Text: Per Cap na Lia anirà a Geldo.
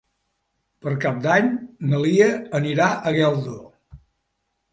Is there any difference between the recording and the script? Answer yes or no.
yes